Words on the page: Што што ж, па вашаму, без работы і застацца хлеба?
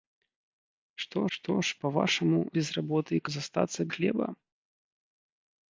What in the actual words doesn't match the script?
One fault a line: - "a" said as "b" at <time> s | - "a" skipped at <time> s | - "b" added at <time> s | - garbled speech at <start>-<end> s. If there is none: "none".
none